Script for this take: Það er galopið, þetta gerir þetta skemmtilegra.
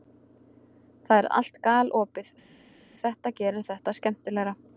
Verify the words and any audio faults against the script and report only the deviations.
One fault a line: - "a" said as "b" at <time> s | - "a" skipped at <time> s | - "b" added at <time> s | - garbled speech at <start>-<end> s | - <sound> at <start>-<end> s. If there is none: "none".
- "allt" added at 1.4 s